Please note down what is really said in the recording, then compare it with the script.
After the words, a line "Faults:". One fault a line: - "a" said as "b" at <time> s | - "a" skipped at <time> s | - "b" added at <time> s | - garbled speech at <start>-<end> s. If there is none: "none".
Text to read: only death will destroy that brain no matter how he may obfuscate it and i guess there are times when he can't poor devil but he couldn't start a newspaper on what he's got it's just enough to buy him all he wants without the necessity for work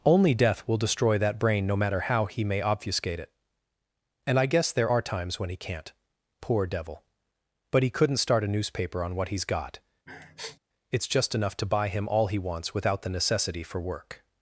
only death will destroy that brain no matter how he may obfuscate it and i guess there are times when he can't poor devil but he couldn't start a newspaper on what he's got it's just enough to buy him all he wants without the necessity for work
Faults:
none